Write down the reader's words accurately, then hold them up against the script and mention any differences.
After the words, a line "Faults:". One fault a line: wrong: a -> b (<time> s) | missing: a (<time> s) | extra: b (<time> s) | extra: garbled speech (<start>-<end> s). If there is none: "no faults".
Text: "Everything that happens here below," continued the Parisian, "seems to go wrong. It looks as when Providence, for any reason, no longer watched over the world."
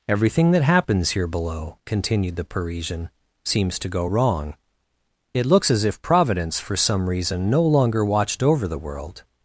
"Everything that happens here below," continued the Parisian, "seems to go wrong. It looks as if Providence, for some reason, no longer watched over the world."
Faults:
wrong: when -> if (5.8 s)
wrong: any -> some (6.8 s)